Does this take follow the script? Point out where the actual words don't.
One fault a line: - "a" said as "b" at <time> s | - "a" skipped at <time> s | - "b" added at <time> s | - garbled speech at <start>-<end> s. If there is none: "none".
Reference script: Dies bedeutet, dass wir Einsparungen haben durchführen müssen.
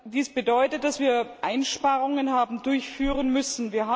none